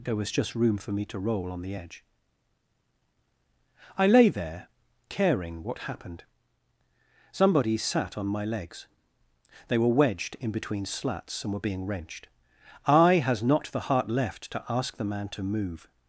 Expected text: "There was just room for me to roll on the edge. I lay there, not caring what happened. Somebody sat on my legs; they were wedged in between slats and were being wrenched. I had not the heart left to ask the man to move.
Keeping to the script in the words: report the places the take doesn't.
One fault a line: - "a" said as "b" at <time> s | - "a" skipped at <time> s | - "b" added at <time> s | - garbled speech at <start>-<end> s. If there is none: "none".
- "not" skipped at 4.7 s
- "had" said as "has" at 13.2 s